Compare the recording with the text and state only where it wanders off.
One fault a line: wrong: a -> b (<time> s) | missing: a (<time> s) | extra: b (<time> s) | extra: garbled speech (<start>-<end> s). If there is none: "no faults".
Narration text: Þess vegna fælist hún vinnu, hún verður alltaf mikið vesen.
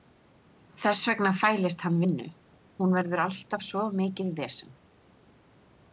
wrong: hún -> hann (1.9 s)
extra: svo (3.7 s)